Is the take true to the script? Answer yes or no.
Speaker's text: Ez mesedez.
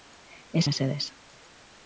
yes